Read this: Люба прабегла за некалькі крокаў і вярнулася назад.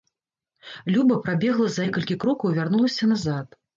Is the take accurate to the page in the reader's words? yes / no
yes